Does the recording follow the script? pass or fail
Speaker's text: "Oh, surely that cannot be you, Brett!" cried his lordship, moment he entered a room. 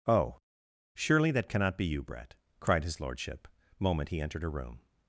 pass